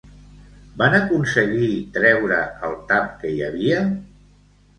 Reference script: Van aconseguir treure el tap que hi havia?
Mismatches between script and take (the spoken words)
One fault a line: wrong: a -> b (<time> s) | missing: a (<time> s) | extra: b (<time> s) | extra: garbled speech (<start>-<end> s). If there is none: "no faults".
no faults